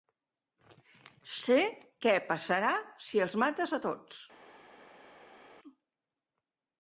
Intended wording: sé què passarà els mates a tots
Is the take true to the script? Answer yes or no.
no